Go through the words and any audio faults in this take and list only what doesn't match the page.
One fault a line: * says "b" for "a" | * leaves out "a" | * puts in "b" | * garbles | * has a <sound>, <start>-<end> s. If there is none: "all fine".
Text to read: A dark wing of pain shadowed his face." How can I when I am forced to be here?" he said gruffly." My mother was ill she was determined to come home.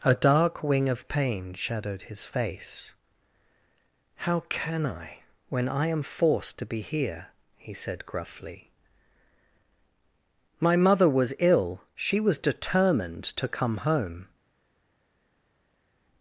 all fine